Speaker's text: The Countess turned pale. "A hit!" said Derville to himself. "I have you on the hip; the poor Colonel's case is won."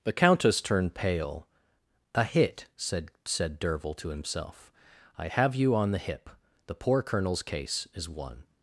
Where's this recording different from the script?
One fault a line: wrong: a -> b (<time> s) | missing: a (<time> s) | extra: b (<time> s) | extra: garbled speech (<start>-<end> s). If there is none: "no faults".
extra: said (3.2 s)